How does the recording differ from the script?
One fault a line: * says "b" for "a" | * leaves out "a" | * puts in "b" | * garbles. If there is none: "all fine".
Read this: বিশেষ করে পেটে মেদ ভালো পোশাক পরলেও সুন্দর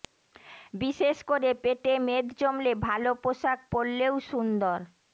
* puts in "জমলে"